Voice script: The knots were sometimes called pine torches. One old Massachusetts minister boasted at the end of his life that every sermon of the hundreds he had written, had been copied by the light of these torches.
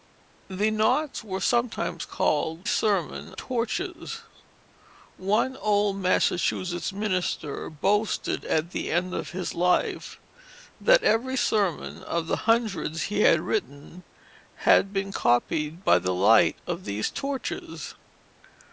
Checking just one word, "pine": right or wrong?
wrong